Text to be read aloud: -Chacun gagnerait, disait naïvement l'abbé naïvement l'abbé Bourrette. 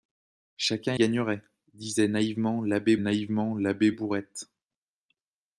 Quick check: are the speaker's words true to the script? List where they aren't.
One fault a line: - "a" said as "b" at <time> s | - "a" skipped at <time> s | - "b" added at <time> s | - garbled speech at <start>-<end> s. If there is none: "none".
none